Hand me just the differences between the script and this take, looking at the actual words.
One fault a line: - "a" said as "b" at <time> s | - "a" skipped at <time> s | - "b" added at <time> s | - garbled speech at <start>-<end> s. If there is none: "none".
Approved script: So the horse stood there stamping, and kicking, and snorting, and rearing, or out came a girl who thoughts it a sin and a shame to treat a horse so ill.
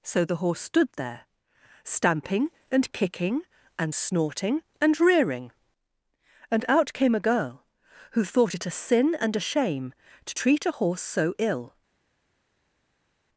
- "or" said as "and" at 6.5 s
- "thoughts" said as "thought" at 8.2 s